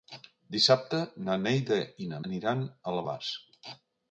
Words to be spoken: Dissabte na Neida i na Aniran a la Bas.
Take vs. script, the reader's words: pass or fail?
pass